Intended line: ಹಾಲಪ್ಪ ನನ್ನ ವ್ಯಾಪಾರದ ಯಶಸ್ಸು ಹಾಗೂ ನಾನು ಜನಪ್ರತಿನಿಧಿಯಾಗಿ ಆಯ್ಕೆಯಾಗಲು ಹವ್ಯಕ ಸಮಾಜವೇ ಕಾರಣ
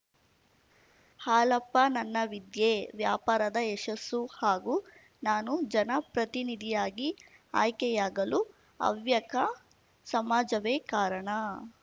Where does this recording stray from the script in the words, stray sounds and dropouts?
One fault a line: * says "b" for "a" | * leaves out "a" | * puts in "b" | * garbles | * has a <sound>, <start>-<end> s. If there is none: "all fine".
* puts in "ವಿದ್ಯೆ"